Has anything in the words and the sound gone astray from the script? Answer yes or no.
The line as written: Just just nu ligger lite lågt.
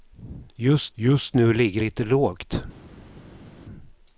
no